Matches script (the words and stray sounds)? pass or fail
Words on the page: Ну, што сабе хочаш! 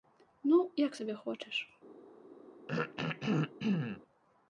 fail